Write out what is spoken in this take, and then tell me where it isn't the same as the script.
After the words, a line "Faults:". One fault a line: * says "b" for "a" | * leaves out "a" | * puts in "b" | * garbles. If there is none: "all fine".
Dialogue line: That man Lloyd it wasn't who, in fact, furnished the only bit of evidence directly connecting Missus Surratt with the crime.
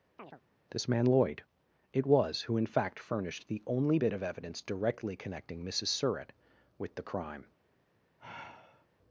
This man Lloyd it was who, in fact, furnished the only bit of evidence directly connecting Missus Surratt with the crime.
Faults:
* says "This" for "That"
* says "was" for "wasn't"